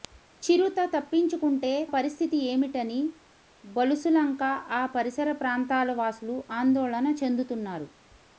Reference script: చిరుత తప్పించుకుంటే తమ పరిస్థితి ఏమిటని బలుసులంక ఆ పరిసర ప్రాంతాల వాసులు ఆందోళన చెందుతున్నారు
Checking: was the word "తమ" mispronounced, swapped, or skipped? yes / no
yes